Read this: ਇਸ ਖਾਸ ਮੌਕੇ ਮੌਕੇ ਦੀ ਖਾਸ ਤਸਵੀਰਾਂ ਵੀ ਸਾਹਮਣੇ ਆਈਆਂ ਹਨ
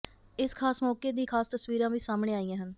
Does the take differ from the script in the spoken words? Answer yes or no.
yes